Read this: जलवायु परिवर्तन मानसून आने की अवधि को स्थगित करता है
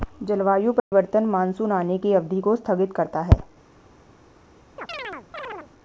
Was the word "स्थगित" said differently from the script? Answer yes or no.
no